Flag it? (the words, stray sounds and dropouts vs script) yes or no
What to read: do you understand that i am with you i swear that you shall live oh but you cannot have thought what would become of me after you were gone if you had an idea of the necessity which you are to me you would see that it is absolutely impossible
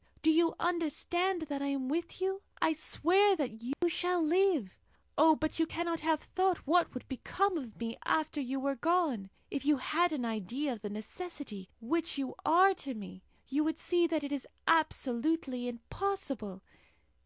yes